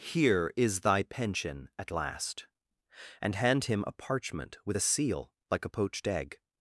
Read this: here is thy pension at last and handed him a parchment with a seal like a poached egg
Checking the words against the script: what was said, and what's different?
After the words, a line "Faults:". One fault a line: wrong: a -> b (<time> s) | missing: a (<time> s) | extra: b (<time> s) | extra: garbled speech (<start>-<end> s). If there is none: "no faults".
here is thy pension at last and hand him a parchment with a seal like a poached egg
Faults:
wrong: handed -> hand (3.4 s)